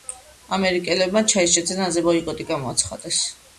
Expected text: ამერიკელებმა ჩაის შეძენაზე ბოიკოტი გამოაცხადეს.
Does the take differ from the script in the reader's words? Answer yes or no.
no